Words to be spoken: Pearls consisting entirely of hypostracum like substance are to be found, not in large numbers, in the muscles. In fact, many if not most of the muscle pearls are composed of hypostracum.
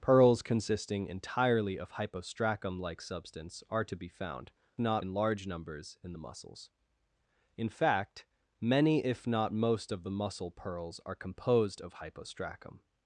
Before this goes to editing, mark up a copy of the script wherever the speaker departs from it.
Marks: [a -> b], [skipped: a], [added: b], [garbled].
Pearls consisting entirely of hypostracum like substance are to be found, not in large numbers, in the muscles. In fact, many if not most of the muscle pearls are composed of hypostracum.